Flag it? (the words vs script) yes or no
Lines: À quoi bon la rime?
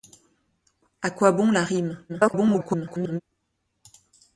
yes